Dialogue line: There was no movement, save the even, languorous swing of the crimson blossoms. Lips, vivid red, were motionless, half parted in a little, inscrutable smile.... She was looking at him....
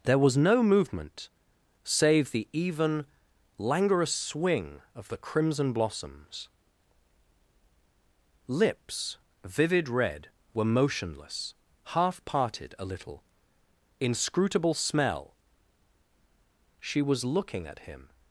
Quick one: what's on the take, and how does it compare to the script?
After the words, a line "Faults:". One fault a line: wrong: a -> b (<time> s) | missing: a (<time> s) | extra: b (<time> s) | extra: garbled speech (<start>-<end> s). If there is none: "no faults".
There was no movement, save the even, languorous swing of the crimson blossoms. Lips, vivid red, were motionless, half parted a little, inscrutable smell.... She was looking at him....
Faults:
missing: in (12.7 s)
wrong: smile -> smell (14.7 s)